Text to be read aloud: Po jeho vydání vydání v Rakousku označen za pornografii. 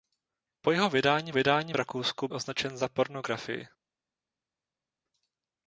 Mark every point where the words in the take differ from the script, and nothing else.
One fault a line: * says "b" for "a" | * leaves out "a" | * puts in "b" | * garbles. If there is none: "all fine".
all fine